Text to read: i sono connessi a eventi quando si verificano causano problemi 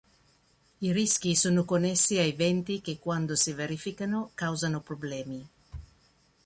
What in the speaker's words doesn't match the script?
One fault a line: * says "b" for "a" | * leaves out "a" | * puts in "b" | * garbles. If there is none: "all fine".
* puts in "rischi"
* puts in "che"